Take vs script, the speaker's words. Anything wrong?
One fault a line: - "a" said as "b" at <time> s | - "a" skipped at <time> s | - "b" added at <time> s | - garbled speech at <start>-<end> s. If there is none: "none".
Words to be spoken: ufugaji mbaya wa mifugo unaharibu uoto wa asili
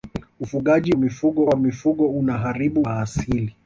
- "mbaya" said as "mifugo" at 1.0 s
- "uoto" skipped at 2.8 s